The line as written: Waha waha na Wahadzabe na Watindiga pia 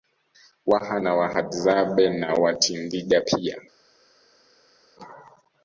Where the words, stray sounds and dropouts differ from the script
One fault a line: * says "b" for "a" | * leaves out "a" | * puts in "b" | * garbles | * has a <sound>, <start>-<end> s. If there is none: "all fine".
* leaves out "waha"